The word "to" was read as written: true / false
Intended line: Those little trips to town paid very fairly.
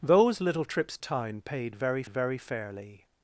false